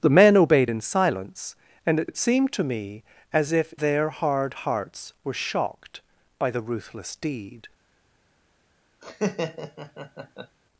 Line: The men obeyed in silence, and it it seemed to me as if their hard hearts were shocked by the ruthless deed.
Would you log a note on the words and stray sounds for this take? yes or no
yes